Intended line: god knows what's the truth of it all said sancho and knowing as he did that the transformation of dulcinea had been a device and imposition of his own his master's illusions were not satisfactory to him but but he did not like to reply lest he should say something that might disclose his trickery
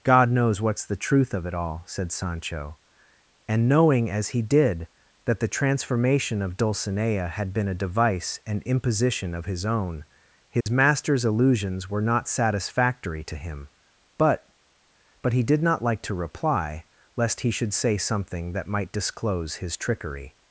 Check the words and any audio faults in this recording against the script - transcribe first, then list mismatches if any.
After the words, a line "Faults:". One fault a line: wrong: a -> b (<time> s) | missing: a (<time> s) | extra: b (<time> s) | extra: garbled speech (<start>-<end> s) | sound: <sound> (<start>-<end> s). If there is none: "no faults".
god knows what's the truth of it all said sancho and knowing as he did that the transformation of dulcinea had been a device and imposition of his own his master's illusions were not satisfactory to him but but he did not like to reply lest he should say something that might disclose his trickery
Faults:
sound: dropout (10.6-10.7 s)